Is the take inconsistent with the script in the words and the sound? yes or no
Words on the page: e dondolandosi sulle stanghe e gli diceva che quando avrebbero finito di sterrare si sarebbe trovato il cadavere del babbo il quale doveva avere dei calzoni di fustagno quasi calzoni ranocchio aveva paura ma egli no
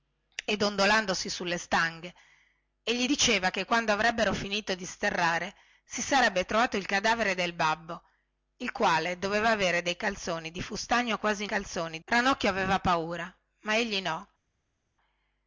no